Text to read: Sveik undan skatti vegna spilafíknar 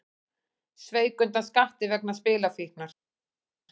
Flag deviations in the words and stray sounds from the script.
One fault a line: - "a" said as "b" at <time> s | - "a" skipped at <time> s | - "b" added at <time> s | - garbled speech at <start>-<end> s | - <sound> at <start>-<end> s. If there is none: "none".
none